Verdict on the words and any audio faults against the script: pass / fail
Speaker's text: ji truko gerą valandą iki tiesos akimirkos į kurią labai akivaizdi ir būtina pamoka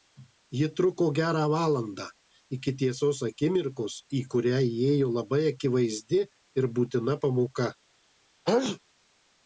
fail